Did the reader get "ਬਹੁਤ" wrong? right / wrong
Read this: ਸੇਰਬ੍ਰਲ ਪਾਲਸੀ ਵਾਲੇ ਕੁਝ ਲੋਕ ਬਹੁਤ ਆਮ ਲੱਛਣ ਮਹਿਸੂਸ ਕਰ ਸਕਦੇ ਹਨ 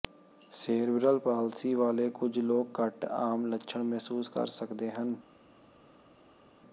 wrong